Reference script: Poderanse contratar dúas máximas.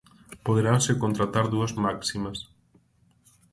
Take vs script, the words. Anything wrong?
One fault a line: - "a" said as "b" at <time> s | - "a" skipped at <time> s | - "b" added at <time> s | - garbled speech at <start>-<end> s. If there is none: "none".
none